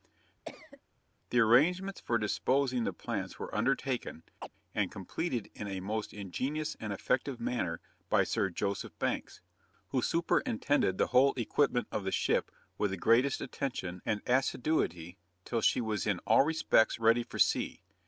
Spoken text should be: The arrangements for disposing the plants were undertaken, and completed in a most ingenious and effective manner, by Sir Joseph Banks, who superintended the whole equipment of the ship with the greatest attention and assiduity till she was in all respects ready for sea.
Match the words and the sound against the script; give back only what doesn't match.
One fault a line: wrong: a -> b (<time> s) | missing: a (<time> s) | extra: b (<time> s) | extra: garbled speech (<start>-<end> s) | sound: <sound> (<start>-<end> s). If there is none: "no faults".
sound: cough (0.4-0.8 s)
sound: chirp (4.4-4.5 s)